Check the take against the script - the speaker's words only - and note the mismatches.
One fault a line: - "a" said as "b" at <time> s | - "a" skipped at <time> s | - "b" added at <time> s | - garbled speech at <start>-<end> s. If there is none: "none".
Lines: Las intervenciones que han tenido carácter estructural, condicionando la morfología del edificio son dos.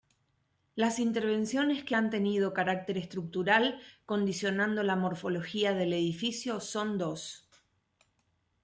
none